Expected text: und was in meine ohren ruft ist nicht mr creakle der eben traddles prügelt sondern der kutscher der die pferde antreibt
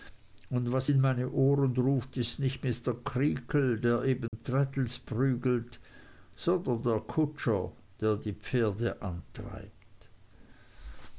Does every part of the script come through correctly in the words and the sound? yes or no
no